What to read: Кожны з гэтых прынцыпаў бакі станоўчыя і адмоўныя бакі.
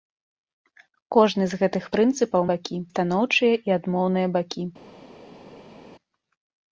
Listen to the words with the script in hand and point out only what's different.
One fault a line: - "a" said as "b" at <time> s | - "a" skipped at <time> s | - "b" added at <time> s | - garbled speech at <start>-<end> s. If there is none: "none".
none